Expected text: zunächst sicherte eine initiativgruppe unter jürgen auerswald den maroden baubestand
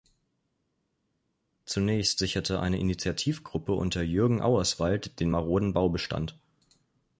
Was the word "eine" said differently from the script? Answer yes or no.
no